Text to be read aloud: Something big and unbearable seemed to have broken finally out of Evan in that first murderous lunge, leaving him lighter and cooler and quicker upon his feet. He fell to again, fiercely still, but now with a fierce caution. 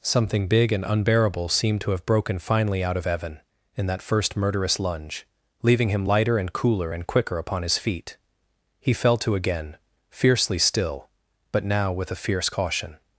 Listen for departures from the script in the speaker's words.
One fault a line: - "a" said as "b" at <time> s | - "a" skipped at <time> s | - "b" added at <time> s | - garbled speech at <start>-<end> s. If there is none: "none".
none